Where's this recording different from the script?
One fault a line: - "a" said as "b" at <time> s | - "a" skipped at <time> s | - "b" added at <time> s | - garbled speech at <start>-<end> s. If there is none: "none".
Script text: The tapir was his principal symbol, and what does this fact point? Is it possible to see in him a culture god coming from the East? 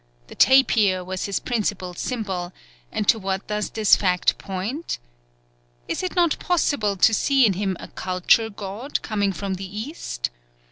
- "to" added at 3.1 s
- "not" added at 6.1 s